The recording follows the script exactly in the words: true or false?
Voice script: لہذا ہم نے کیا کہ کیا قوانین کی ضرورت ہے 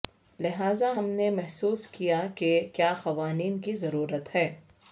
false